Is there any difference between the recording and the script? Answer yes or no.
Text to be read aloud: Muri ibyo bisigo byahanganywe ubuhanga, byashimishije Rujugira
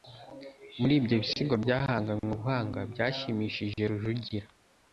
no